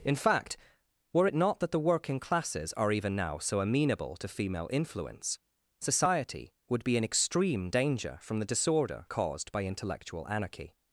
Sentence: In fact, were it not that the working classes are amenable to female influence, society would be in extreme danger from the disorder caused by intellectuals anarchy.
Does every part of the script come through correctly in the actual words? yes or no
no